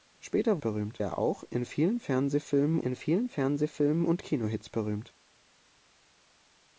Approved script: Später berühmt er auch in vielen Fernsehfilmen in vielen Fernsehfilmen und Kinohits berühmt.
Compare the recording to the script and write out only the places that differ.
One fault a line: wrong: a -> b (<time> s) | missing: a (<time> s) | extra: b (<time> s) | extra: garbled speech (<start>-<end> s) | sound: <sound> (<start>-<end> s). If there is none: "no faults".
no faults